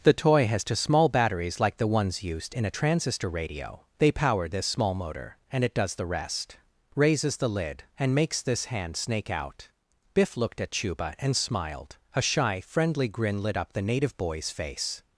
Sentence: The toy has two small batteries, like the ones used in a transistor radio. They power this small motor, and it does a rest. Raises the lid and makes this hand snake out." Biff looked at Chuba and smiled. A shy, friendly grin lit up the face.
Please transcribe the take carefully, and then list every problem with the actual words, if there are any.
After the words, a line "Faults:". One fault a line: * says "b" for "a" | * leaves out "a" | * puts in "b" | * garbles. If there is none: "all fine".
The toy has two small batteries, like the ones used in a transistor radio. They power this small motor, and it does the rest. Raises the lid and makes this hand snake out." Biff looked at Chuba and smiled. A shy, friendly grin lit up the native boy's face.
Faults:
* says "the" for "a"
* puts in "native boy's"